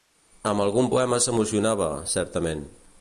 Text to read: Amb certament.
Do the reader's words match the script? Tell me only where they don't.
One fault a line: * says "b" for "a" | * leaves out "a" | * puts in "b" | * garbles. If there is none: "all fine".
* puts in "algun poema s'emocionava"